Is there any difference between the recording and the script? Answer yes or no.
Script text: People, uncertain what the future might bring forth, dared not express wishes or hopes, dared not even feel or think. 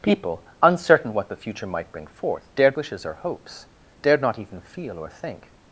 yes